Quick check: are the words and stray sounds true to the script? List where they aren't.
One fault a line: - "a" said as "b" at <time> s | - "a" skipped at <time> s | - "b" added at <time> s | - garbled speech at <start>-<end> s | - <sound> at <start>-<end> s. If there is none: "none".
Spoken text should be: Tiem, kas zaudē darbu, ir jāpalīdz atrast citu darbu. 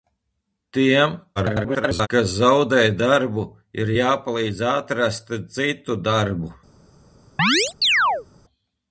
- garbled speech at 1.4-2.1 s
- chirp at 7.4-8.3 s